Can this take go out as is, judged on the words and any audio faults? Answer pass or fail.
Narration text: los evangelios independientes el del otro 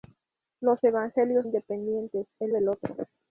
pass